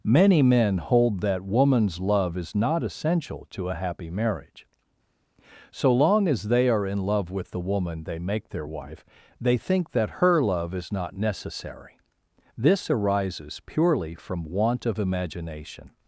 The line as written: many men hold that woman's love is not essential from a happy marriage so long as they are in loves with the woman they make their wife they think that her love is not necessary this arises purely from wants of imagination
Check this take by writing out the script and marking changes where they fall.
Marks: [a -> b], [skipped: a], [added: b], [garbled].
many men hold that woman's love is not essential [from -> to] a happy marriage so long as they are in [loves -> love] with the woman they make their wife they think that her love is not necessary this arises purely from [wants -> want] of imagination